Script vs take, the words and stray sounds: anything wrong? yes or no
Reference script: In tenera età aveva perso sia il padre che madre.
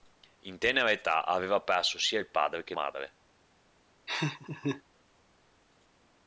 yes